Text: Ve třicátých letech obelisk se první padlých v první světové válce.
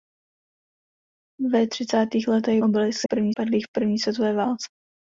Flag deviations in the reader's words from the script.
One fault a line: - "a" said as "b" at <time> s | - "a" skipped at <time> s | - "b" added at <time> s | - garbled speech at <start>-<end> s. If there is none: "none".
none